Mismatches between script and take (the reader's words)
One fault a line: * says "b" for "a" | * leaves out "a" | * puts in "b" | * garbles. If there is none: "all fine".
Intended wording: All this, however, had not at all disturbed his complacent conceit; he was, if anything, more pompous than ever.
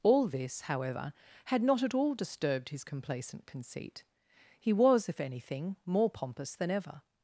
all fine